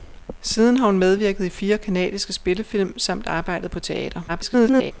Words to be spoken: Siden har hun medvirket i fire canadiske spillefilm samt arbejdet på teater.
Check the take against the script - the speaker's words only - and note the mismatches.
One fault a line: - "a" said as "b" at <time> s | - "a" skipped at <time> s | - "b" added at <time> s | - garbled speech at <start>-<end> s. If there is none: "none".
- garbled speech at 4.3-4.9 s